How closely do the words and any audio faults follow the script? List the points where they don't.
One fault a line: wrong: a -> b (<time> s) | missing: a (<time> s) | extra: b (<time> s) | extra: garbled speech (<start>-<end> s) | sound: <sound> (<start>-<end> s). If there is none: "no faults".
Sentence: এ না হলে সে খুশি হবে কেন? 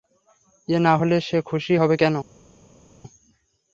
no faults